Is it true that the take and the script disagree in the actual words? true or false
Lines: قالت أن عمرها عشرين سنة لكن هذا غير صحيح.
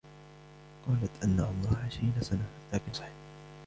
true